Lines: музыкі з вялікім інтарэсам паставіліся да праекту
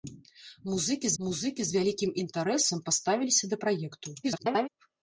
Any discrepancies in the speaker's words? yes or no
yes